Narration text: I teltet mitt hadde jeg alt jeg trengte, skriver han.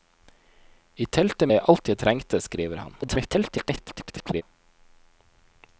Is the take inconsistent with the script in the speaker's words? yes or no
yes